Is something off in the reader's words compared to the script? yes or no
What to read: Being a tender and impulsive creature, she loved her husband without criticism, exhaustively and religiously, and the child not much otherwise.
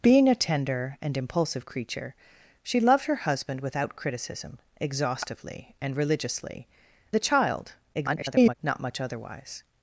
yes